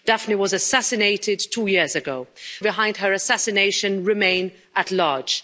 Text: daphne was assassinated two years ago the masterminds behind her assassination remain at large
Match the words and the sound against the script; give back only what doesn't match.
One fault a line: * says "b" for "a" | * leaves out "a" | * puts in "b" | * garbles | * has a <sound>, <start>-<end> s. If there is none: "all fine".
* leaves out "the masterminds"